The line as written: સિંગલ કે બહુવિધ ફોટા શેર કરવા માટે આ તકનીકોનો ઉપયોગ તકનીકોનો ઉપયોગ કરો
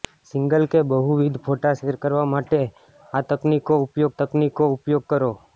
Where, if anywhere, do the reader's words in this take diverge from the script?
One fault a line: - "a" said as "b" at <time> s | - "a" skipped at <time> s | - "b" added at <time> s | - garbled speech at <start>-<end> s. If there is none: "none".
none